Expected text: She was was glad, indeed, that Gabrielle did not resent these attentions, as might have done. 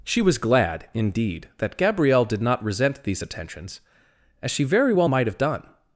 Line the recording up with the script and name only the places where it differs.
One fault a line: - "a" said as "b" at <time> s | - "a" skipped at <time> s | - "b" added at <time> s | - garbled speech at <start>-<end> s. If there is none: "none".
- "was" skipped at 0.4 s
- "she very well" added at 4.5 s